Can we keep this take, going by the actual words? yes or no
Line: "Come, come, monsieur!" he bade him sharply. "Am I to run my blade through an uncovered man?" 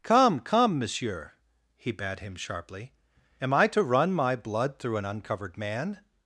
no